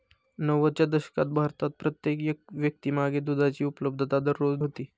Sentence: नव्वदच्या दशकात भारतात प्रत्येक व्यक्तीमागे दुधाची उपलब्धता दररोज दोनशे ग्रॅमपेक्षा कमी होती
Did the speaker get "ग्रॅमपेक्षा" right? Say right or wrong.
wrong